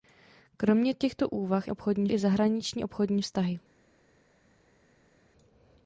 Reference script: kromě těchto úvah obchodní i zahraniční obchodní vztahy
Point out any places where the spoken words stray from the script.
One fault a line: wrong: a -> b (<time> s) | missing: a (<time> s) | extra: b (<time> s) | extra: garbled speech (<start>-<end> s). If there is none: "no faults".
no faults